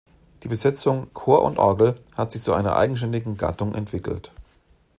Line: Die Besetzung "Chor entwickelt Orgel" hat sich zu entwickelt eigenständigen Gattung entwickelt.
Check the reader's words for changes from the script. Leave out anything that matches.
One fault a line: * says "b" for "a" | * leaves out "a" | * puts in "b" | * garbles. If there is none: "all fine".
* says "und" for "entwickelt"
* says "einer" for "entwickelt"